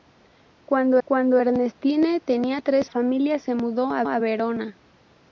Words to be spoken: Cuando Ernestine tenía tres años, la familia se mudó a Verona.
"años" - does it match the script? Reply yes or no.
no